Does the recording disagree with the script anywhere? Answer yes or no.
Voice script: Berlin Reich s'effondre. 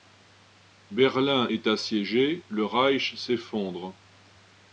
yes